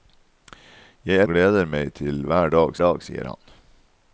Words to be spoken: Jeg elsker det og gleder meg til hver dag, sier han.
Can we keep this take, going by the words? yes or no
no